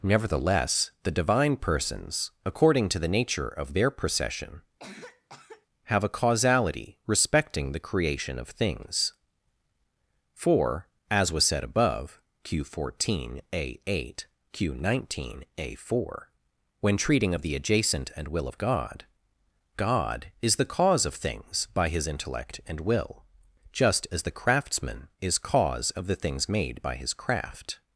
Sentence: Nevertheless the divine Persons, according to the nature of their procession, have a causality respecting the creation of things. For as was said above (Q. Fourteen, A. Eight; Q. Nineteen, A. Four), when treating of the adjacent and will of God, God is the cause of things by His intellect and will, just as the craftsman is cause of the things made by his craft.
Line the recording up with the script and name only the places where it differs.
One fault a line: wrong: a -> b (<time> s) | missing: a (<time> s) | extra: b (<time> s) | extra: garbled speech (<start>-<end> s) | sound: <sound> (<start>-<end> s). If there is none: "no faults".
sound: cough (4.8-5.7 s)